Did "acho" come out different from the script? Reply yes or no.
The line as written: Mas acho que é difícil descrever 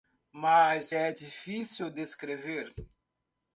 yes